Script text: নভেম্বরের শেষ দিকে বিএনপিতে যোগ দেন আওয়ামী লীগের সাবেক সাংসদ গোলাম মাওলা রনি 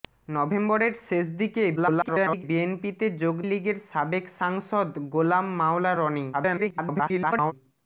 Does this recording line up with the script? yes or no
no